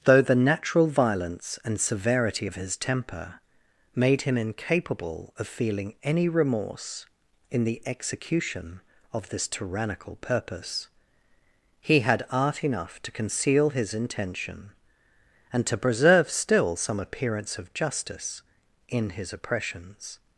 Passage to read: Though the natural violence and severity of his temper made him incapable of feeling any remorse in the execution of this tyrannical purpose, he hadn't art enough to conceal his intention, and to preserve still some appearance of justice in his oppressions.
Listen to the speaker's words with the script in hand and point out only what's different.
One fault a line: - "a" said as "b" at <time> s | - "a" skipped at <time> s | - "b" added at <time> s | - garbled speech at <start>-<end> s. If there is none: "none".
- "hadn't" said as "had" at 12.0 s